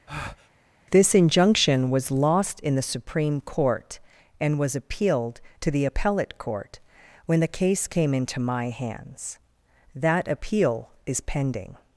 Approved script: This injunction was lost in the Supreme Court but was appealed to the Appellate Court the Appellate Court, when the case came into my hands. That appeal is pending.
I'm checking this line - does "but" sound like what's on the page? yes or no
no